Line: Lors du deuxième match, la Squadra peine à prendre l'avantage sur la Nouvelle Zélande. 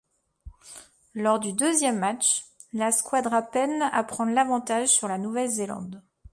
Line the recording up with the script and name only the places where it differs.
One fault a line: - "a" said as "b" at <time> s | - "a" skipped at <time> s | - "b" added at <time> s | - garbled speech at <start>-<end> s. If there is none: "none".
none